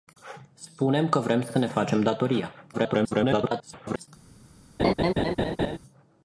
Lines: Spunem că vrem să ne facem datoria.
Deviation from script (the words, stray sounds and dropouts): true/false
true